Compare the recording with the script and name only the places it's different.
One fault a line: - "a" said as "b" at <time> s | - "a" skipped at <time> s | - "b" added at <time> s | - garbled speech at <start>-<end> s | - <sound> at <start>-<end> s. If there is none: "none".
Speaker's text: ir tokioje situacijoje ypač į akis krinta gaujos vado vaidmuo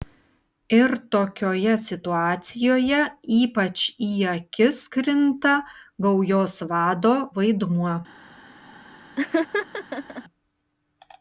- laugh at 9.2-10.2 s